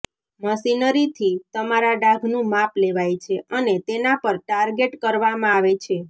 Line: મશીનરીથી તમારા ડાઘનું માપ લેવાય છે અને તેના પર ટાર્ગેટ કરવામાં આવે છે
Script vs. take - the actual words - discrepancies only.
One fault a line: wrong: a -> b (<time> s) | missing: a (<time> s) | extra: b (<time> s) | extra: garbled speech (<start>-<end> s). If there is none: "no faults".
no faults